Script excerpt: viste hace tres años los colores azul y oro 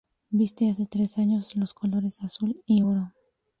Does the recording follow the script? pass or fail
pass